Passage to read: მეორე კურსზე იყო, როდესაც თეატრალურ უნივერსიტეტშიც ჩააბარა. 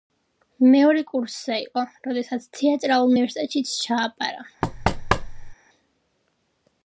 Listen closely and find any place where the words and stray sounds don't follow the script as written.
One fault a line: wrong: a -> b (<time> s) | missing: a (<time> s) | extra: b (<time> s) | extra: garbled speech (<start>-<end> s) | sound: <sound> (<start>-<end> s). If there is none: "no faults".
sound: thud (4.6-5.5 s)